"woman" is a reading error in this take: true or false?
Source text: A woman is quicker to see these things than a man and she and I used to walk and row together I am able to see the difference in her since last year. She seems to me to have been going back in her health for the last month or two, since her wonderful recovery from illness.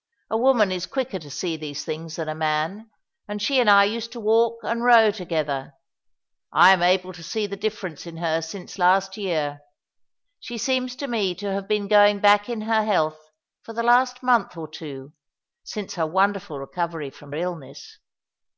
false